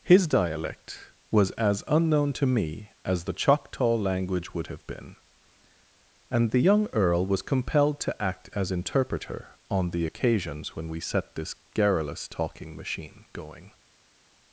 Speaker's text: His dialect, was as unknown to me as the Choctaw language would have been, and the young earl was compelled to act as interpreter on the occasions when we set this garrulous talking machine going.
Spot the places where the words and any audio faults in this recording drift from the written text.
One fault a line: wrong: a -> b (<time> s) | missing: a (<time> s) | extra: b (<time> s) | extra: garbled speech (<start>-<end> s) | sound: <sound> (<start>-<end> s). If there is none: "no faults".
no faults